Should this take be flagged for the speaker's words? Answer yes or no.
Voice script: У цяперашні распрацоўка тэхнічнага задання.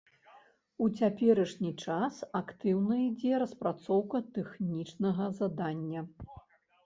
yes